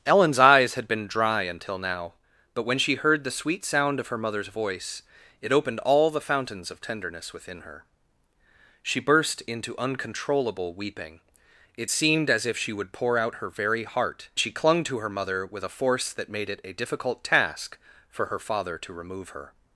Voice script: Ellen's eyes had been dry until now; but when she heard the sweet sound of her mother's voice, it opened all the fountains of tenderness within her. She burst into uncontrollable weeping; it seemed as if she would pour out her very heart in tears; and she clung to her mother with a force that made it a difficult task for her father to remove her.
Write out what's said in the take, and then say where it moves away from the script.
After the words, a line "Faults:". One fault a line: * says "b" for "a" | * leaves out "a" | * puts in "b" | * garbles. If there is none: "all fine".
Ellen's eyes had been dry until now; but when she heard the sweet sound of her mother's voice, it opened all the fountains of tenderness within her. She burst into uncontrollable weeping; it seemed as if she would pour out her very heart she clung to her mother with a force that made it a difficult task for her father to remove her.
Faults:
* leaves out "in tears and"